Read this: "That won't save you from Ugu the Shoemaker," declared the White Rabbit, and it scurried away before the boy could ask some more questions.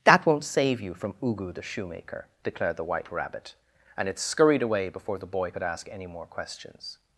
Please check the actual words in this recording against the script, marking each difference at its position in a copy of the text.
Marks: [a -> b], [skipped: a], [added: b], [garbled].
"That won't save you from Ugu the Shoemaker," declared the White Rabbit, and it scurried away before the boy could ask [some -> any] more questions.